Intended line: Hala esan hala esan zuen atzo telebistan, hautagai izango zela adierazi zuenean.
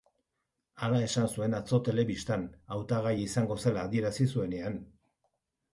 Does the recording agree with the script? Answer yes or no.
no